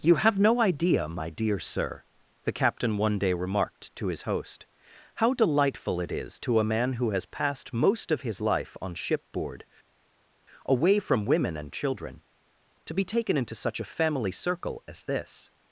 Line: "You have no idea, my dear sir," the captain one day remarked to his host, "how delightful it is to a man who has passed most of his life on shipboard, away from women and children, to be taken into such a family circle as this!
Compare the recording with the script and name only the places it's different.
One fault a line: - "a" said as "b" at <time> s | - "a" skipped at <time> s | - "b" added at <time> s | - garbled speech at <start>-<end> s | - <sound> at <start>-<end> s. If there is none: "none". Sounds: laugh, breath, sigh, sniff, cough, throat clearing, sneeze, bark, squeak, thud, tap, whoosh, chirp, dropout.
none